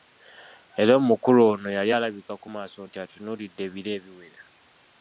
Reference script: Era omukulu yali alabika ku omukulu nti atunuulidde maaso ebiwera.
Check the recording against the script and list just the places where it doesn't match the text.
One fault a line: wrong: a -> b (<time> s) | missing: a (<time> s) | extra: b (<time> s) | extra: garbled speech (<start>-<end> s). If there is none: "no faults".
extra: ono (1.5 s)
wrong: omukulu -> maaso (2.5 s)
wrong: maaso -> ebiro (3.7 s)